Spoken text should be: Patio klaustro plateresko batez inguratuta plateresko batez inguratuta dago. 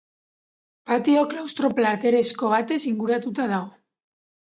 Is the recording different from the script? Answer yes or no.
yes